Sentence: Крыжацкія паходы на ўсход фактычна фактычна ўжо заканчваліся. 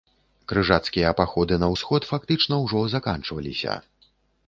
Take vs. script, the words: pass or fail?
fail